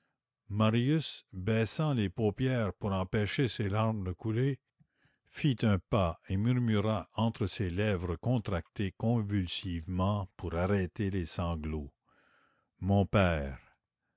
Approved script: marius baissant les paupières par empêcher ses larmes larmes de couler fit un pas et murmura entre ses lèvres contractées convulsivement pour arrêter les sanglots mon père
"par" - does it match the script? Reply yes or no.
no